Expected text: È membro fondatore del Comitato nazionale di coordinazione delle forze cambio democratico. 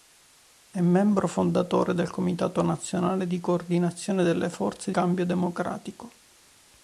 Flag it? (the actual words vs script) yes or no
no